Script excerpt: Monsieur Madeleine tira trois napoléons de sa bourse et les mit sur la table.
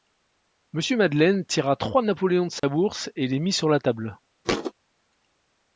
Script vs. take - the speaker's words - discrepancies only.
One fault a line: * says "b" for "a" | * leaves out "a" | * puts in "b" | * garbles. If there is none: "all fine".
all fine